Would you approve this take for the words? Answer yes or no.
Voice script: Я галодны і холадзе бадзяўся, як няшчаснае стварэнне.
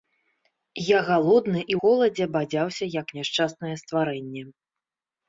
yes